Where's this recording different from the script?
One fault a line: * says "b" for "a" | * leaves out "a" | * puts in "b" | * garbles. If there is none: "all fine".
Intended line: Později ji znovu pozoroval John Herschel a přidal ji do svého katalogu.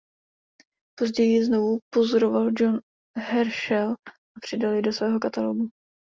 all fine